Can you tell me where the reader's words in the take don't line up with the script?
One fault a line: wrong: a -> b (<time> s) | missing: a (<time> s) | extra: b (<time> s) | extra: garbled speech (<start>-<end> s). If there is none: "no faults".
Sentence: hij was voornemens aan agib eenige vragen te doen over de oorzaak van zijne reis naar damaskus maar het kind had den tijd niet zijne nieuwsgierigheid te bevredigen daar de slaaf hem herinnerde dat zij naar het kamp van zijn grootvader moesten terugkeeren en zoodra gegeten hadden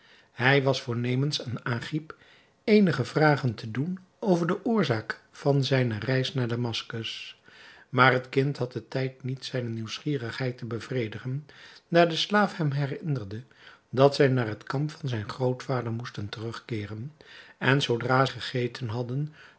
no faults